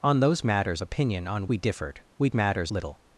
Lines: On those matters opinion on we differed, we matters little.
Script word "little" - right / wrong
right